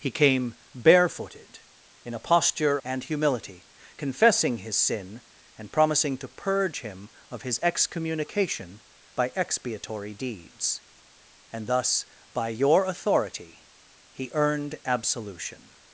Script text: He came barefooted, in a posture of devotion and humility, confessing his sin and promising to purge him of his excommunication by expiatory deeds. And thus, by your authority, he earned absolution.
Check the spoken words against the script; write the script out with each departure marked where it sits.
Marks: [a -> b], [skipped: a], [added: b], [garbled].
He came barefooted, in a posture [skipped: of devotion] and humility, confessing his sin and promising to purge him of his excommunication by expiatory deeds. And thus, by your authority, he earned absolution.